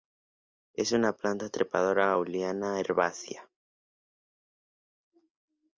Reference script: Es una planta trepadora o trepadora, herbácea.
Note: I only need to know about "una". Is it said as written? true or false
true